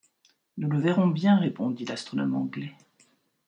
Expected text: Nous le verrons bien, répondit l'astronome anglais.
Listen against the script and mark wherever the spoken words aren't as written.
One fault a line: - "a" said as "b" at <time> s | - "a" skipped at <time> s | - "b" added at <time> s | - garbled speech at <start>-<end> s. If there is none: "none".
none